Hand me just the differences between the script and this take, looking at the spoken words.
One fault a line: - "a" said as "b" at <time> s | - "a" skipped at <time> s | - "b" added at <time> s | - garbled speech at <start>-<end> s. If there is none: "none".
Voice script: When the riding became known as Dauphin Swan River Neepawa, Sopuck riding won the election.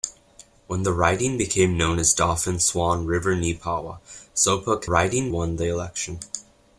none